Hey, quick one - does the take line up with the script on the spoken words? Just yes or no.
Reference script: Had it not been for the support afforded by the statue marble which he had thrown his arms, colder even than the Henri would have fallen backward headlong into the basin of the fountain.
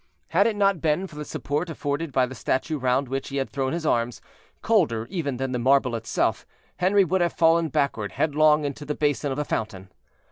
no